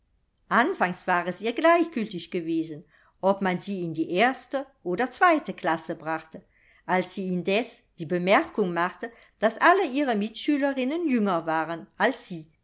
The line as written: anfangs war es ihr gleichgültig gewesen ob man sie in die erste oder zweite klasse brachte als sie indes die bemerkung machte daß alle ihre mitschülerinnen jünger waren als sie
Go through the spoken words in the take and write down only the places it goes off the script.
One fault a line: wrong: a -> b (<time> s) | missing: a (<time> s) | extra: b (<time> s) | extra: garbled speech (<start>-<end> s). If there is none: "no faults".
no faults